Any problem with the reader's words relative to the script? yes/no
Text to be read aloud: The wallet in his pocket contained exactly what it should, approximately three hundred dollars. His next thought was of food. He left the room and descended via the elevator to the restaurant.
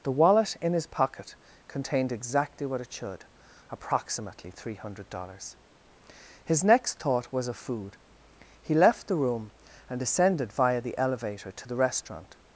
no